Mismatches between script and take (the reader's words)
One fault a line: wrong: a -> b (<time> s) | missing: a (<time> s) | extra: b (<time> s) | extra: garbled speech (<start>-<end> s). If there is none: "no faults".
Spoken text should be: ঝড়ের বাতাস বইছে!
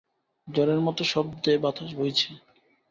extra: মতো শব্দে (0.8 s)